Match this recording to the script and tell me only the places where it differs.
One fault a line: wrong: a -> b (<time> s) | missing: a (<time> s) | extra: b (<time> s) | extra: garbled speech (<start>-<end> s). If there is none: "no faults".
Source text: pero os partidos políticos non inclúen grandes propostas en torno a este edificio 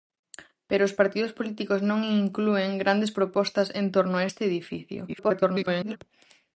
extra: garbled speech (5.1-6.0 s)